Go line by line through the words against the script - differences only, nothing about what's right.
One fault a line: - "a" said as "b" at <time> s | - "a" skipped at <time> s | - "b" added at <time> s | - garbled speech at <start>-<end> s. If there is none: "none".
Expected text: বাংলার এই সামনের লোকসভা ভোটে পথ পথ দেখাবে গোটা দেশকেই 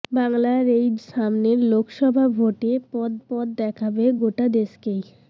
none